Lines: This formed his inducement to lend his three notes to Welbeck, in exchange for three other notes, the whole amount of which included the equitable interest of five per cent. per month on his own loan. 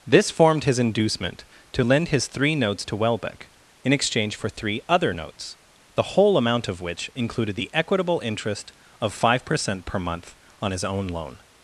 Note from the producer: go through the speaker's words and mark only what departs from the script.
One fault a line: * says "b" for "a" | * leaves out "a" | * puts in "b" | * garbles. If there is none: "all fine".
all fine